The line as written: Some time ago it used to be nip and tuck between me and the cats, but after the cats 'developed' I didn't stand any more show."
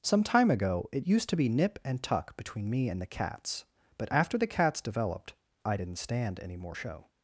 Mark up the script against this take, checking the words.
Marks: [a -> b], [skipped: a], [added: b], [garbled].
Some time ago it used to be nip and tuck between me and the cats, but after the cats 'developed' I didn't stand any more show."